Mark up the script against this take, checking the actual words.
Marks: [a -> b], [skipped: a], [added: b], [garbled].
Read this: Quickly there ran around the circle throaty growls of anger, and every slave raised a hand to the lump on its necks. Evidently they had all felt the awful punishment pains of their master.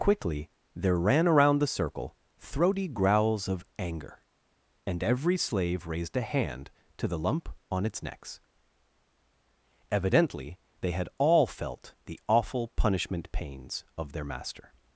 Quickly there ran around the circle throaty growls of anger, and every slave raised a hand to the lump on its necks. Evidently they had all felt the awful punishment pains of their master.